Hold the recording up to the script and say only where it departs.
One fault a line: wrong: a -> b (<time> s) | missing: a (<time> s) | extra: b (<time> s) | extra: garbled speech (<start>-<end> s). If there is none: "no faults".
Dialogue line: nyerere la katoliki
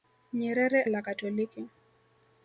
no faults